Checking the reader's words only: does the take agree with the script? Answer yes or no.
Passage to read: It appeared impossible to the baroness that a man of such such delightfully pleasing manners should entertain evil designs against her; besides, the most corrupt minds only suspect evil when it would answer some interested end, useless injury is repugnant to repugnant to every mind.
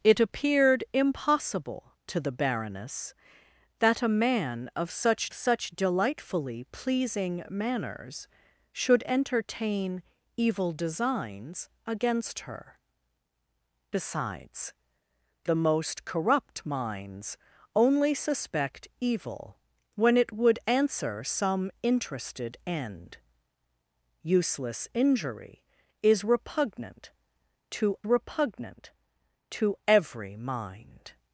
yes